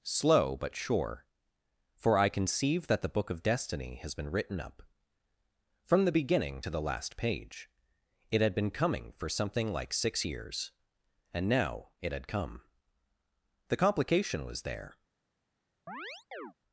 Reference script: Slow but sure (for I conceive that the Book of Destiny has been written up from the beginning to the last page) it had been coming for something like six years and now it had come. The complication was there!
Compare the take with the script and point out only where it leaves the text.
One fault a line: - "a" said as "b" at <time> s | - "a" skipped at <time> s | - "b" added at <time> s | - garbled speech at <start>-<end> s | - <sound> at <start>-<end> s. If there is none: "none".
- chirp at 15.9-16.5 s